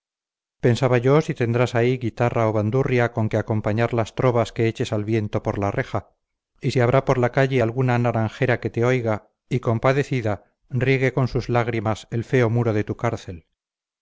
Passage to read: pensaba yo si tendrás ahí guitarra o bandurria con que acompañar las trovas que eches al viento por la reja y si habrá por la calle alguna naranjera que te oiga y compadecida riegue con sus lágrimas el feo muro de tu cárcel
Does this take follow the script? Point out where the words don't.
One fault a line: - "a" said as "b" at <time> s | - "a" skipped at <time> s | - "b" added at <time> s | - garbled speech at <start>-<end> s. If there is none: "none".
none